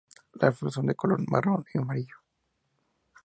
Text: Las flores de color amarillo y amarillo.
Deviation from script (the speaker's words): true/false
true